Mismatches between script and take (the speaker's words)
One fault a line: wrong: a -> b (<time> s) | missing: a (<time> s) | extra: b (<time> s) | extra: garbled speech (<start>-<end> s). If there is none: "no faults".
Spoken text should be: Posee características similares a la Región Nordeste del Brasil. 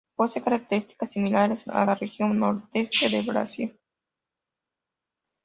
no faults